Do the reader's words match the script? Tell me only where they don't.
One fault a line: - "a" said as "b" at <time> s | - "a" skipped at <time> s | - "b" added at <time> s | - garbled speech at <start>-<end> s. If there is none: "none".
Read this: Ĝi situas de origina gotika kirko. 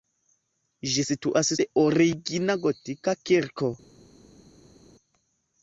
none